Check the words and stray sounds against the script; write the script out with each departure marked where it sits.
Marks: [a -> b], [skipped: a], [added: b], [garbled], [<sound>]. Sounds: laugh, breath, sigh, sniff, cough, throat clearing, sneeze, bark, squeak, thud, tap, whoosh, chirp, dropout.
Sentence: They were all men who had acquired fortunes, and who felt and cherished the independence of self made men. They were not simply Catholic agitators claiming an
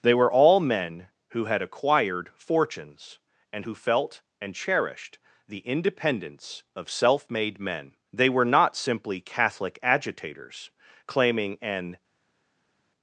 They were all men who had acquired fortunes, and who felt and cherished the independence of self made men. They were not simply Catholic agitators claiming an